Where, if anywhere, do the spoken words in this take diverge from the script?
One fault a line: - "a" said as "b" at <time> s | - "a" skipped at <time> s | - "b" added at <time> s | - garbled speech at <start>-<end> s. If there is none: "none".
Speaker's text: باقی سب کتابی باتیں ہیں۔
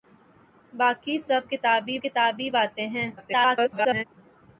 - "کتابی" added at 2.0 s
- garbled speech at 3.2-4.0 s